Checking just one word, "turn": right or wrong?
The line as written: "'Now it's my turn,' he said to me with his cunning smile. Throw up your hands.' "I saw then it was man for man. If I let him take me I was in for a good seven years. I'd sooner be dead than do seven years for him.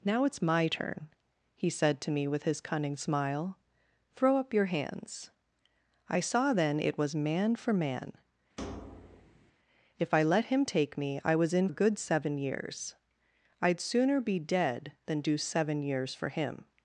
right